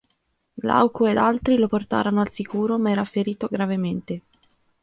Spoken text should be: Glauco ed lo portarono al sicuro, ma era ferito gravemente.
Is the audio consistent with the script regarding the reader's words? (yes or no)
no